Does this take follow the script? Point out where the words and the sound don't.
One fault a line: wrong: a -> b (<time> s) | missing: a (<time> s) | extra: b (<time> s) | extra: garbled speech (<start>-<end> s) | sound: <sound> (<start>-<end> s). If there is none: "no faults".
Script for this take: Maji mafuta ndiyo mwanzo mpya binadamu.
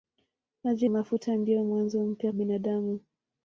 no faults